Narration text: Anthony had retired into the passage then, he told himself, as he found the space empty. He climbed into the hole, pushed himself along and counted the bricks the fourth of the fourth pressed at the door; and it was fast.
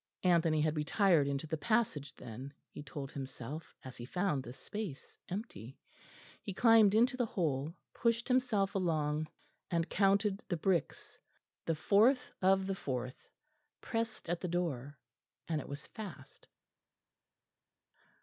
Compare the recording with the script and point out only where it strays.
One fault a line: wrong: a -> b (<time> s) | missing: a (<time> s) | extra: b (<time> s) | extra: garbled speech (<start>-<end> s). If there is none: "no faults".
no faults